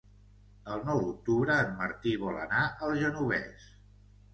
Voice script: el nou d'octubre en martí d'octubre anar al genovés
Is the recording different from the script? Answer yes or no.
yes